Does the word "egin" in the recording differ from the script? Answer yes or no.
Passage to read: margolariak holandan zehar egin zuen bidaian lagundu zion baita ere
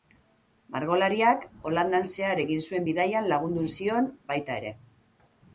no